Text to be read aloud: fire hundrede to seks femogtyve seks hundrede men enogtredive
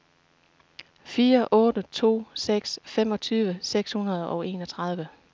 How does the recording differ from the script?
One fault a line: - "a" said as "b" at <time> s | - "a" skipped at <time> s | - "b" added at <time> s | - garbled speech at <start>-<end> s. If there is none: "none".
- "hundrede" said as "otte" at 1.5 s
- "men" said as "og" at 4.3 s